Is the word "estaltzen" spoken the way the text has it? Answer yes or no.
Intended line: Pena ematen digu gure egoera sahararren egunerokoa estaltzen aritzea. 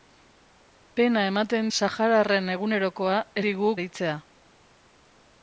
no